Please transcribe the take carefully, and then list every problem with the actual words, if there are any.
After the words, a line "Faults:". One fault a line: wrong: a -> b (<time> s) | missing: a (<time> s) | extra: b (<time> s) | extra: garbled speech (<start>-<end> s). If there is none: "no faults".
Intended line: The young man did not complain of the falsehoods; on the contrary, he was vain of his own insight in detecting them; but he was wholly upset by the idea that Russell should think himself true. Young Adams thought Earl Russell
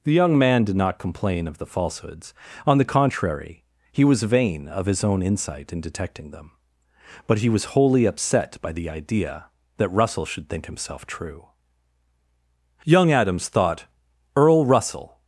The young man did not complain of the falsehoods; on the contrary, he was vain of his own insight in detecting them; but he was wholly upset by the idea that Russell should think himself true. Young Adams thought Earl Russell
Faults:
no faults